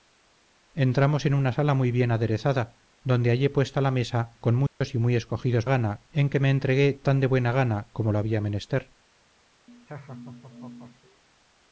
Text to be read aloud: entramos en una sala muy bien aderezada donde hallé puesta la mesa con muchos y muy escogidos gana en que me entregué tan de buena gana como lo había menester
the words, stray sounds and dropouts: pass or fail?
fail